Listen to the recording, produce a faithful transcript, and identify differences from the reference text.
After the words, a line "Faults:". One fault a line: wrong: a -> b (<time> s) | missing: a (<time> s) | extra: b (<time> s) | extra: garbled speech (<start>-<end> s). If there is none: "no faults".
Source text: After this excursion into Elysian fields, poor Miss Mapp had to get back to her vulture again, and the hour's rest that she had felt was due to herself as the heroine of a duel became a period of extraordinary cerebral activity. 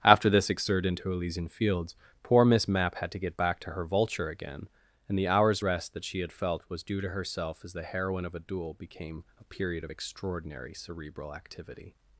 After this exert into Elysian fields, poor Miss Mapp had to get back to her vulture again, and the hour's rest that she had felt was due to herself as the heroine of a duel became a period of extraordinary cerebral activity.
Faults:
wrong: excursion -> exert (0.5 s)